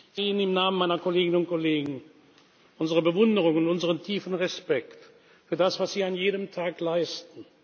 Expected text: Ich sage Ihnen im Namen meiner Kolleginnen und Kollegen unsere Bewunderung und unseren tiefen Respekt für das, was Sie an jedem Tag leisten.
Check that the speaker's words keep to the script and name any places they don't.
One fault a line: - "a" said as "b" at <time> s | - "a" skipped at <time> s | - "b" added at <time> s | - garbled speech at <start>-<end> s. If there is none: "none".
- "sage" skipped at 0.2 s